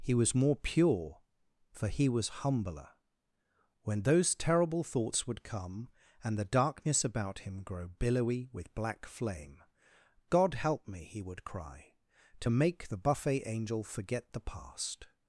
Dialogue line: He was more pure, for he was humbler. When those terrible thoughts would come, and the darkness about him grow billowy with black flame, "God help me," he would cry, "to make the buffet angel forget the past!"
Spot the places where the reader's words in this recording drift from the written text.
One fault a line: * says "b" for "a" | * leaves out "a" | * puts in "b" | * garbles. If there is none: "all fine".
all fine